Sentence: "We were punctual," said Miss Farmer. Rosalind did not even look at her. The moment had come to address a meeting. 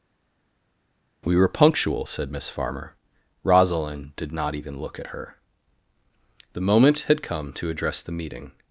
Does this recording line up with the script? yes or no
no